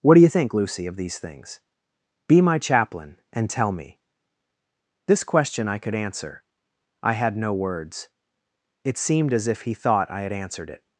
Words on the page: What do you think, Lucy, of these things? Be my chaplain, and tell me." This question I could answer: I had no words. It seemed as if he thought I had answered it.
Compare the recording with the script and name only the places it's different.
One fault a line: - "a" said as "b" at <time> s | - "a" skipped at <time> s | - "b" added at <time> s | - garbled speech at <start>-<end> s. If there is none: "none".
none